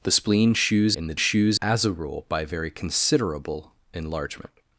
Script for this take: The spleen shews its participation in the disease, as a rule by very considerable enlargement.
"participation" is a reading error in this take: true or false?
true